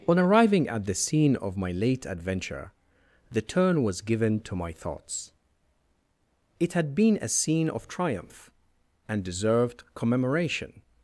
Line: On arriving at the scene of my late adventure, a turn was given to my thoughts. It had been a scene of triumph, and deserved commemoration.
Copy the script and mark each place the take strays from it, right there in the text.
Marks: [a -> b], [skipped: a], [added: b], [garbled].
On arriving at the scene of my late adventure, [a -> the] turn was given to my thoughts. It had been a scene of triumph, and deserved commemoration.